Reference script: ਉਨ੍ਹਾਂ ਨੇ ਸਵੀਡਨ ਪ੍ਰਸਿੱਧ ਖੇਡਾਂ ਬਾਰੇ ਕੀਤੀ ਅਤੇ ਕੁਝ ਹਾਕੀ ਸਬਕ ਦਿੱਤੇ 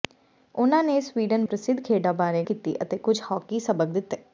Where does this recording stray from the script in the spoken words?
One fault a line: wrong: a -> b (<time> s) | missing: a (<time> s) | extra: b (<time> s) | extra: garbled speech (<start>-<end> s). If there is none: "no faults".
no faults